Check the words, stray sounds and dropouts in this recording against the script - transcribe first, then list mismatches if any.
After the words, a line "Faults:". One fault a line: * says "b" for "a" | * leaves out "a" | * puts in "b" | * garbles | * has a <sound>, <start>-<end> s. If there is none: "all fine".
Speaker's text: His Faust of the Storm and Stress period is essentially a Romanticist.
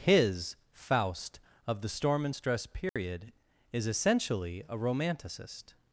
His Faust of the Storm and Stress period is essentially a Romanticist.
Faults:
* has a dropout, 2.9-3.0 s